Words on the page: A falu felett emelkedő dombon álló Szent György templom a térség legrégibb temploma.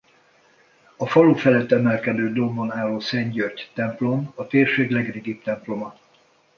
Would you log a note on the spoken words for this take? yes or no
no